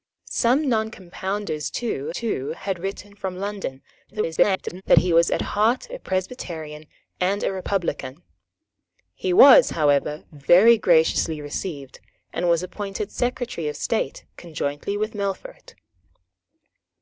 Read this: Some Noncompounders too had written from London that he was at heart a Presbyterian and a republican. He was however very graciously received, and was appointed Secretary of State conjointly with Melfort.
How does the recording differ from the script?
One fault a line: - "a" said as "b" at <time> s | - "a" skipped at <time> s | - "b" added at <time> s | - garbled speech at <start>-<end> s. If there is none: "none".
- "too" added at 2.1 s
- garbled speech at 4.1-4.8 s